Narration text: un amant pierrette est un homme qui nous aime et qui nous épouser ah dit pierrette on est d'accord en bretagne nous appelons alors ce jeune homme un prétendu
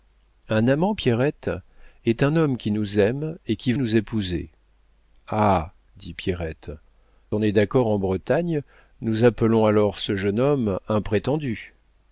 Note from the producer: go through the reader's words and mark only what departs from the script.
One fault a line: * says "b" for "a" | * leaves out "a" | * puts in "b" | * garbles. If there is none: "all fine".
all fine